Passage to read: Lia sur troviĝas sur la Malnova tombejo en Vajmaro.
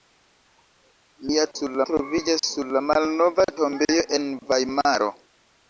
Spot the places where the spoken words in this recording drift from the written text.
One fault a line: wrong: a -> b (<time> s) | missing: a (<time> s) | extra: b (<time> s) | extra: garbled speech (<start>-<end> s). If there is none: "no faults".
no faults